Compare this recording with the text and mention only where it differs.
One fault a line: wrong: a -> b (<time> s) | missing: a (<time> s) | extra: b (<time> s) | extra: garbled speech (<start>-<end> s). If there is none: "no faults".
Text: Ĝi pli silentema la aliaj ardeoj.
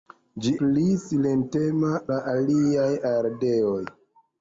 no faults